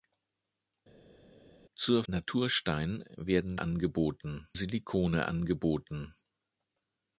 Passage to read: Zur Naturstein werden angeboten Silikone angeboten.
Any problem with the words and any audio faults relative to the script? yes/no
no